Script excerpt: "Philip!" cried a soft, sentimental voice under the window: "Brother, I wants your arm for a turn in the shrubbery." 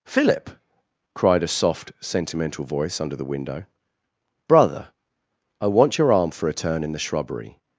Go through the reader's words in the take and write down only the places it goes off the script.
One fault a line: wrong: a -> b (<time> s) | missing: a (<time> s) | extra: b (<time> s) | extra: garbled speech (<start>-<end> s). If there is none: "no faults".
wrong: wants -> want (5.7 s)